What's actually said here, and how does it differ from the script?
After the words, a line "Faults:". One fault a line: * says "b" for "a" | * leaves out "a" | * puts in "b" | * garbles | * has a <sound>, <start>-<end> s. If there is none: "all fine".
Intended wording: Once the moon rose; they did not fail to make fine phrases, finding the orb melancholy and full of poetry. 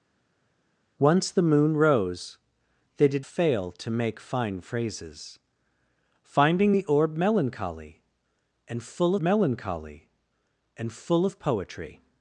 Once the moon rose; they did fail to make fine phrases, finding the orb melancholy and full melancholy and full of poetry.
Faults:
* leaves out "not"
* puts in "melancholy and full"